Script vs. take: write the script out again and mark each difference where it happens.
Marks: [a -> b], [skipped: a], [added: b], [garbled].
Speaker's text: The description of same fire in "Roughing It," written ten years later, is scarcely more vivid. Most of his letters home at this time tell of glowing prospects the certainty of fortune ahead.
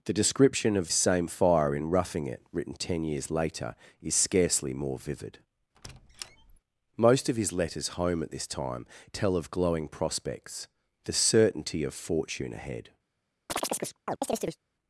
The description of same fire in "Roughing It," written ten years later, is scarcely more vivid. Most of his letters home at this time tell of glowing prospects the certainty of fortune ahead.